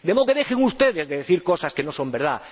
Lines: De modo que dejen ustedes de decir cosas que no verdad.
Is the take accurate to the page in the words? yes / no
no